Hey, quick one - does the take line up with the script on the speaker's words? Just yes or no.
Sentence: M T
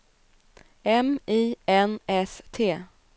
no